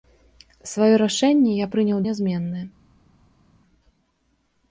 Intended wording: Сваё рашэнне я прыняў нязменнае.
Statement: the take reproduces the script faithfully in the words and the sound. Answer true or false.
true